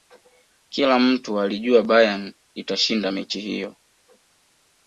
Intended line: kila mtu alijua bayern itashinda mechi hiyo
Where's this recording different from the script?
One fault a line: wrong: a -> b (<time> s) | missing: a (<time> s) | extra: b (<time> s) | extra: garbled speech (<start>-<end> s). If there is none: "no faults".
no faults